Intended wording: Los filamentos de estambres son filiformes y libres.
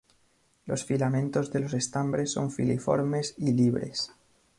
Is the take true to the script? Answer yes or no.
no